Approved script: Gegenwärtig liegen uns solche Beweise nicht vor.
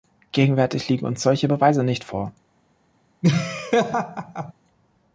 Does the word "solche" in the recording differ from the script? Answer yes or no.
no